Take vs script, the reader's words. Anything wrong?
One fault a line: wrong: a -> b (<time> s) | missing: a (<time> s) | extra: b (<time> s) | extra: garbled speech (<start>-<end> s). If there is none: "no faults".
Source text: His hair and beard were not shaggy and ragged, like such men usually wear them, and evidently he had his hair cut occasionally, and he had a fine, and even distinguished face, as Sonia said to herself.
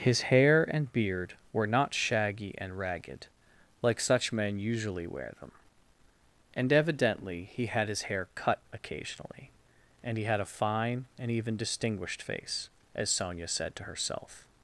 no faults